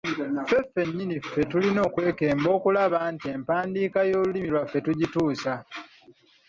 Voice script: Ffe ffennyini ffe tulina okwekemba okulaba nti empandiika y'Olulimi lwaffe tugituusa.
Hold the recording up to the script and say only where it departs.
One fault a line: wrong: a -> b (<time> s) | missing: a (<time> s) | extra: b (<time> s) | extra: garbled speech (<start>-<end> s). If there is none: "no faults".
no faults